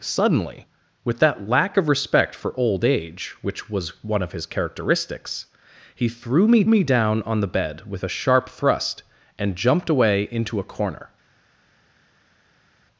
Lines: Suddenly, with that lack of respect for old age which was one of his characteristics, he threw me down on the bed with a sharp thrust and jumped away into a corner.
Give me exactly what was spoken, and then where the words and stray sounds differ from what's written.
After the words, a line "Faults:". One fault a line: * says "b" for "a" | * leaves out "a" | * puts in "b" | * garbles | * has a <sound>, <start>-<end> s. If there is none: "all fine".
Suddenly, with that lack of respect for old age which was one of his characteristics, he threw me me down on the bed with a sharp thrust and jumped away into a corner.
Faults:
* puts in "me"